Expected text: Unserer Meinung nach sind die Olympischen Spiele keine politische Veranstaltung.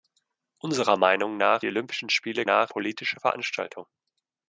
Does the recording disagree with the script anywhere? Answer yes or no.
yes